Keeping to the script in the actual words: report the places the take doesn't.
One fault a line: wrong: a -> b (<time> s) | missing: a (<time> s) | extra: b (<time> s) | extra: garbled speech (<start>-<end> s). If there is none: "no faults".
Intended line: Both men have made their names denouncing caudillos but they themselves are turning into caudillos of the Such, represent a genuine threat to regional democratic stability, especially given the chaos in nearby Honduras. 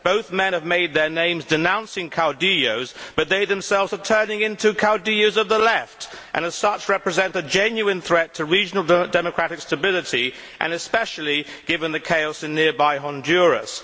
extra: Left and as (5.6 s)